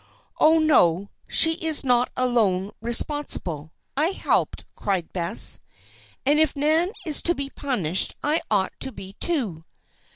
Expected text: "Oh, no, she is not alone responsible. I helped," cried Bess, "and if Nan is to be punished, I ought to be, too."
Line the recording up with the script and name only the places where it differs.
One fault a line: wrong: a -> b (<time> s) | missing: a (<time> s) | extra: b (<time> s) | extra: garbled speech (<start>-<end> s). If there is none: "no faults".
no faults